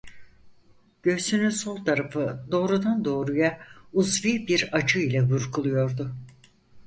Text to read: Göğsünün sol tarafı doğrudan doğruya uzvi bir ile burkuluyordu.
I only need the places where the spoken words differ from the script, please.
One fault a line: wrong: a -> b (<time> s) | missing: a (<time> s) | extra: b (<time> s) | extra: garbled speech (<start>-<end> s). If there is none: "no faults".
extra: acı (4.7 s)